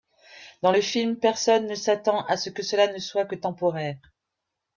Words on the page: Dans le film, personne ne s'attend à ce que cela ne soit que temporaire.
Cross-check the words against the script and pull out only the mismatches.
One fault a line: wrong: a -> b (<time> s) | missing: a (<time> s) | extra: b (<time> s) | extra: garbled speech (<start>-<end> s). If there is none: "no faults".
no faults